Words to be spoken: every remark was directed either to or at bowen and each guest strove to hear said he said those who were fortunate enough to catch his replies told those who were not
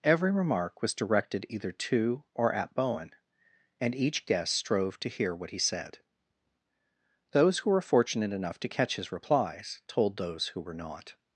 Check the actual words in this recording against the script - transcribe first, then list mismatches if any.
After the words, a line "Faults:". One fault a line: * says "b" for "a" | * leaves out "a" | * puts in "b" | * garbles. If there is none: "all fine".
every remark was directed either to or at bowen and each guest strove to hear what he said those who were fortunate enough to catch his replies told those who were not
Faults:
* says "what" for "said"